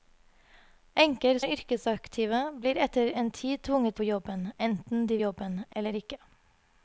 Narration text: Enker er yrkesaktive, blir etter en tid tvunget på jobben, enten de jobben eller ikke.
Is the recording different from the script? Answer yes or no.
no